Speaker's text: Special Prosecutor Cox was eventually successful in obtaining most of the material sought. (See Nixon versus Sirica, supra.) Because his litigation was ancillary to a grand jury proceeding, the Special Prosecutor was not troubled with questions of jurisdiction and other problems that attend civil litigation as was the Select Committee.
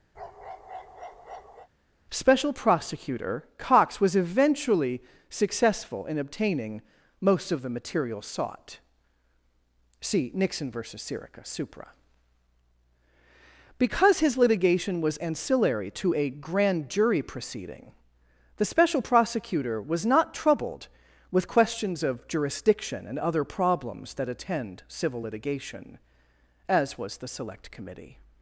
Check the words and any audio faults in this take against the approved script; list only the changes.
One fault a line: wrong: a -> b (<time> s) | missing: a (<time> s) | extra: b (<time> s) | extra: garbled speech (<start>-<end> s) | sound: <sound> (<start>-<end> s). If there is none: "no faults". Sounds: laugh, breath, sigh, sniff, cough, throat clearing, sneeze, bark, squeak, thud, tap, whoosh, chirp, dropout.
sound: bark (0.1-1.7 s)